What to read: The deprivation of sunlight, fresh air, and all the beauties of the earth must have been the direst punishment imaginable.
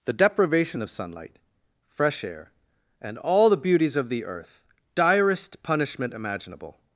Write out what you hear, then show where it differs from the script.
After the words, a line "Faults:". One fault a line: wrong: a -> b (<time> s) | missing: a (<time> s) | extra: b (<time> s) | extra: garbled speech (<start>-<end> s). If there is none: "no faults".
The deprivation of sunlight, fresh air, and all the beauties of the earth direst punishment imaginable.
Faults:
missing: must have been the (4.7 s)